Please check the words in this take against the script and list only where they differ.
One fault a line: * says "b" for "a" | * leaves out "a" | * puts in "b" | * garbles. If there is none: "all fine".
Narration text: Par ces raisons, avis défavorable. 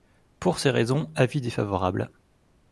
* says "Pour" for "Par"